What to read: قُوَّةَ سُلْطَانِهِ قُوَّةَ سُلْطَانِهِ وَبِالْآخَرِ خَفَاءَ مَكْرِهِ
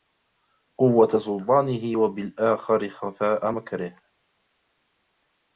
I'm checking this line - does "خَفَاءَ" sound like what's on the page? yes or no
yes